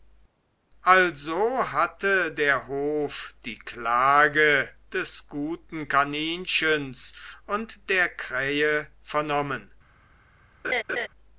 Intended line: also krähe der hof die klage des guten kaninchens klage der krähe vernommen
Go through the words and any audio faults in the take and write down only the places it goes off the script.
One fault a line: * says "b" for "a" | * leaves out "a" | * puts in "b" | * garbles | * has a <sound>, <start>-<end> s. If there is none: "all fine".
* says "hatte" for "krähe"
* says "und" for "klage"
* has a laugh, 10.6-11.1 s